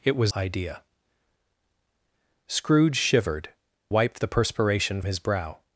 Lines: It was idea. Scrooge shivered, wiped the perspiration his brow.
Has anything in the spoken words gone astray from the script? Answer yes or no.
no